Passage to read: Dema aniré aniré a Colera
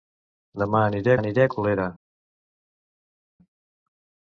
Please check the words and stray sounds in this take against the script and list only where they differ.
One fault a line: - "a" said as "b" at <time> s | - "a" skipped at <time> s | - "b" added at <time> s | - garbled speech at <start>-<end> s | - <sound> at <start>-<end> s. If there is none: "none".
none